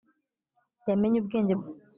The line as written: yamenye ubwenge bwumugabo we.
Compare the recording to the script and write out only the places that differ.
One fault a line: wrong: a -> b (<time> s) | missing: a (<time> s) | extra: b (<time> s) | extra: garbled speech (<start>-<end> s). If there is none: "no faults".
missing: bwumugabo (1.5 s)